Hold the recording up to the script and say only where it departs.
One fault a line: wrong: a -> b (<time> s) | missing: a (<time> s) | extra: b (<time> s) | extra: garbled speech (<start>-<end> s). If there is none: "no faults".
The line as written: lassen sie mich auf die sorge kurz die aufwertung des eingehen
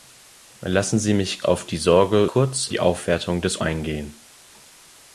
no faults